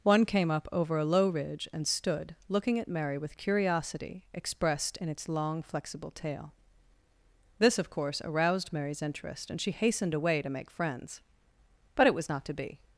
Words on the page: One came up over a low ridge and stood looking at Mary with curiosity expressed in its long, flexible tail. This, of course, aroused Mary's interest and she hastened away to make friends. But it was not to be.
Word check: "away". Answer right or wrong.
right